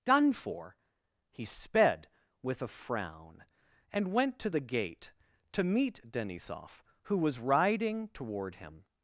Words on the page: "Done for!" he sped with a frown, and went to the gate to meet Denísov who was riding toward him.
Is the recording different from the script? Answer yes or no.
no